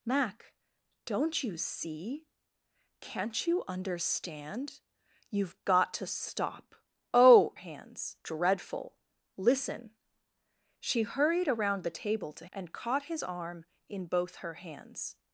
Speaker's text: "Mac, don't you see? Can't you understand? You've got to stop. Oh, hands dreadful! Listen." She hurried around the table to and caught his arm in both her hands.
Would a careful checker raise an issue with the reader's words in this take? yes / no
no